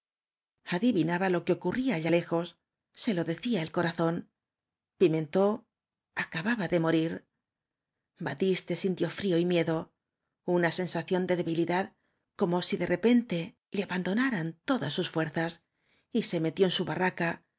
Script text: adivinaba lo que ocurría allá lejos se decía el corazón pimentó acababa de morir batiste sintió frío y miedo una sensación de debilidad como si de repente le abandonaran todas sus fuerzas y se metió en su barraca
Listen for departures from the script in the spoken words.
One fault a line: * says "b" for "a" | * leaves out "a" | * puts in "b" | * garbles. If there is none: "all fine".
* puts in "lo"